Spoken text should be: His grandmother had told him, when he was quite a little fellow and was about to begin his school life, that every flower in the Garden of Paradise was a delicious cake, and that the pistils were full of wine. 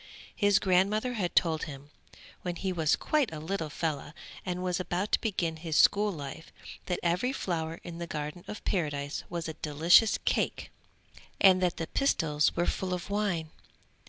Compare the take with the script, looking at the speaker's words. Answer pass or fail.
pass